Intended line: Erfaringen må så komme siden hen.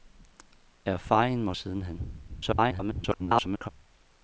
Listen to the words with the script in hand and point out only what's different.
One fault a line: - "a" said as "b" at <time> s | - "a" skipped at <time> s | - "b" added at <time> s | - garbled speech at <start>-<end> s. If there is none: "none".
- "så komme" skipped at 1.6 s
- garbled speech at 2.3-3.7 s